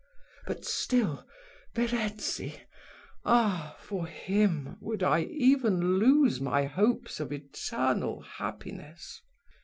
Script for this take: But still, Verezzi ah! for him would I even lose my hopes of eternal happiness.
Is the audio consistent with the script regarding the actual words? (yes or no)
yes